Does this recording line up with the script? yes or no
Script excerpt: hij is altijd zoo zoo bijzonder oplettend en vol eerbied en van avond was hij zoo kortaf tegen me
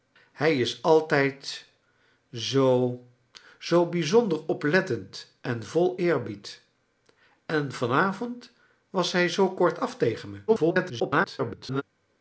no